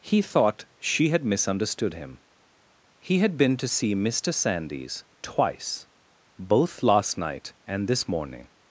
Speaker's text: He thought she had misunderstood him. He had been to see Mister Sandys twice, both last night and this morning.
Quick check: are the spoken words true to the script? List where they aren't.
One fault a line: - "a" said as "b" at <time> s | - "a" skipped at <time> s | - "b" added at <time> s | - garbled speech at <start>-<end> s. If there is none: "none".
none